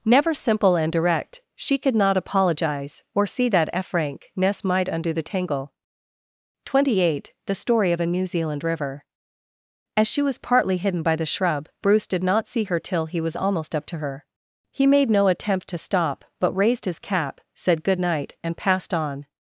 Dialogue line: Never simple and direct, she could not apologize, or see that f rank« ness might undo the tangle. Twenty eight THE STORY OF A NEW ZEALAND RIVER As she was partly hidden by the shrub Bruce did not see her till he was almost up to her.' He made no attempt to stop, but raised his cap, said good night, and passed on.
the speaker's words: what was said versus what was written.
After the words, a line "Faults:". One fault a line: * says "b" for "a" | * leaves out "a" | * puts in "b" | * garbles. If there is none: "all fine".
Never simple and direct, she could not apologize, or see that f rank« ness might undo the tangle. Twenty eight THE STORY OF A NEW ZEALAND RIVER As she was partly hidden by the shrub Bruce did not see her till he was almost up to her.' He made no attempt to stop, but raised his cap, said good night, and passed on.
Faults:
all fine